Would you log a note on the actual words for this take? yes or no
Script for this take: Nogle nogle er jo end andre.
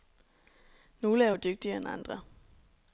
yes